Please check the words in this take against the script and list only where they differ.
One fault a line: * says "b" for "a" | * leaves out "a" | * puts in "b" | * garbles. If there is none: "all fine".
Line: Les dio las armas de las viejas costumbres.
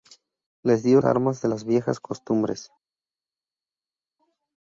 * leaves out "las"